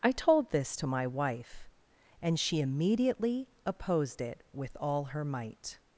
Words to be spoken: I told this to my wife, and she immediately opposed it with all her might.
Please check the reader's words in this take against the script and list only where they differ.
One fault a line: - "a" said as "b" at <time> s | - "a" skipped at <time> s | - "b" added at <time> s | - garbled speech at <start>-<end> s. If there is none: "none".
none